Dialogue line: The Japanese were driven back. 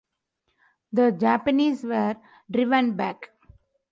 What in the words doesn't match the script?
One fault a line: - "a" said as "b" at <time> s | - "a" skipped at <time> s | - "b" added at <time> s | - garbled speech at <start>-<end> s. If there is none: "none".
none